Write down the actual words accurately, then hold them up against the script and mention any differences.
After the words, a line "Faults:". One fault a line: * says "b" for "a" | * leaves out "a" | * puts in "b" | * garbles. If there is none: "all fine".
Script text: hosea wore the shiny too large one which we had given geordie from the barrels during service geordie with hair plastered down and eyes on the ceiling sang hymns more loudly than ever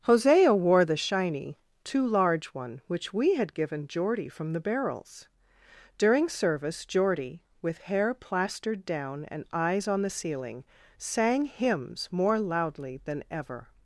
hosea wore the shiny too large one which we had given geordie from the barrels during service geordie with hair plastered down and eyes on the ceiling sang hymns more loudly than ever
Faults:
all fine